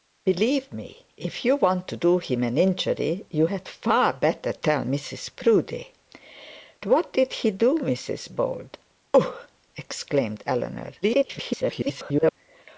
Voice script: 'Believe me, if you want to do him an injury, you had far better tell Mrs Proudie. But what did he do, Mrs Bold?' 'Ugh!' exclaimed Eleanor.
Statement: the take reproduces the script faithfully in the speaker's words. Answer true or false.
false